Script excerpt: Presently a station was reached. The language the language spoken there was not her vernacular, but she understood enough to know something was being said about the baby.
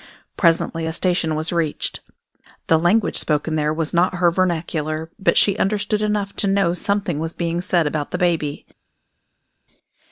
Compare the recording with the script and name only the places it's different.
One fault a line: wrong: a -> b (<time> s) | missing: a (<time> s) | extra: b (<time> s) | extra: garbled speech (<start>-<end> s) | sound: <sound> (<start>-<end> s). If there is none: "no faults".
missing: the language (3.2 s)